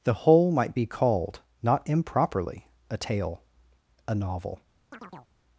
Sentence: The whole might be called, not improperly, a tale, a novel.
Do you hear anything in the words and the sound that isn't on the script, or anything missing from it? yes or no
yes